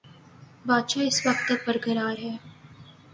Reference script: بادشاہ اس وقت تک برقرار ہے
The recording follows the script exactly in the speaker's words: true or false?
true